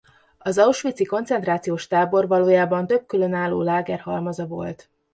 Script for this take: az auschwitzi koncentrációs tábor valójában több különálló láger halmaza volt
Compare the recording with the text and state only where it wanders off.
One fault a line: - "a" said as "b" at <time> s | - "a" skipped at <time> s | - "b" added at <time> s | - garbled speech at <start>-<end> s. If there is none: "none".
none